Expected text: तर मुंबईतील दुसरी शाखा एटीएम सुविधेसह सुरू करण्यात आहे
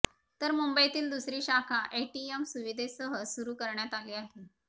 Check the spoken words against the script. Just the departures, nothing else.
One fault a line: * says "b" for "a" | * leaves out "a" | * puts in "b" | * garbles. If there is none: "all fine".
* puts in "आली"